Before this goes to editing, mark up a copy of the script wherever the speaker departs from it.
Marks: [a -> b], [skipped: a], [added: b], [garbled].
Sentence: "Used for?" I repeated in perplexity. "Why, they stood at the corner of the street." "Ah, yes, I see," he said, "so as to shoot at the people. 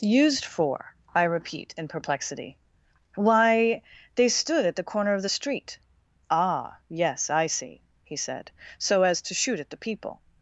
"Used for?" I [repeated -> repeat] in perplexity. "Why, they stood at the corner of the street." "Ah, yes, I see," he said, "so as to shoot at the people.